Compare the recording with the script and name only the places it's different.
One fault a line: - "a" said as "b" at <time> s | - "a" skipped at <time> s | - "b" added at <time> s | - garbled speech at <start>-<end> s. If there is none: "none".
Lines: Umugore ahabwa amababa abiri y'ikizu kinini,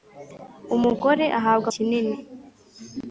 - "amababa abiri y'ikizu" skipped at 1.7 s